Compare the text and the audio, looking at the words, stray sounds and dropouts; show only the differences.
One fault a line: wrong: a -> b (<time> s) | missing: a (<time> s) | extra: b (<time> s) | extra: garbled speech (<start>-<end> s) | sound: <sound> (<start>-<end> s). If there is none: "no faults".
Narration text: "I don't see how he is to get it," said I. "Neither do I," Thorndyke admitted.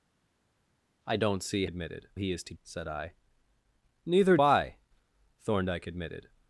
wrong: how -> admitted (1.7 s)
missing: get it (2.5 s)
missing: do (4.4 s)